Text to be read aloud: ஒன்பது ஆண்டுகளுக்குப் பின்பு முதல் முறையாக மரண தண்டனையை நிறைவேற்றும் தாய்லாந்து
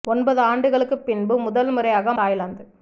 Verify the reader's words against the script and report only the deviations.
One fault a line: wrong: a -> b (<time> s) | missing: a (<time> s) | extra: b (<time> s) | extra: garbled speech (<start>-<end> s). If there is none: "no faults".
missing: மரண தண்டனையை நிறைவேற்றும் (2.1 s)